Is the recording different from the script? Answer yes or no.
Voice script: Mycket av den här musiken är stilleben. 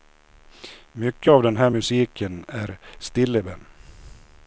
no